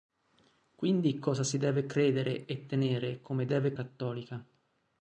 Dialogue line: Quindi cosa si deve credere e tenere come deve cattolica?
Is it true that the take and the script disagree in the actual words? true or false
false